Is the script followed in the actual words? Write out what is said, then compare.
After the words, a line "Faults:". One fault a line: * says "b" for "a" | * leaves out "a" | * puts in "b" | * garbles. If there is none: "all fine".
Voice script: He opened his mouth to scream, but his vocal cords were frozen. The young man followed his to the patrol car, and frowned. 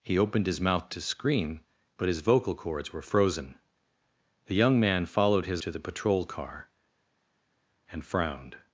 He opened his mouth to scream, but his vocal cords were frozen. The young man followed his to the patrol car, and frowned.
Faults:
all fine